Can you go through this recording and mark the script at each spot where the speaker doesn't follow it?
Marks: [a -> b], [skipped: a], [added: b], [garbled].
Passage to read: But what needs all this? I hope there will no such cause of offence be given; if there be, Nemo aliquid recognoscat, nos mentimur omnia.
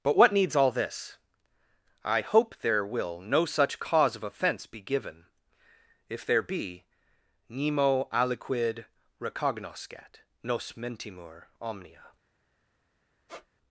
But what needs all this? I hope there will no such cause of offence be given; if there be, Nemo aliquid recognoscat, nos mentimur omnia.